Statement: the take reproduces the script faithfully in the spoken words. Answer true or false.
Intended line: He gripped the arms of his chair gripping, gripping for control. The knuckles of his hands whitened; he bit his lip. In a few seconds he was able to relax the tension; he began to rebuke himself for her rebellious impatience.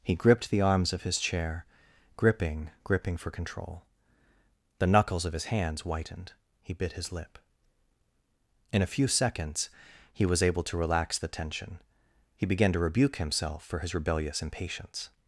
false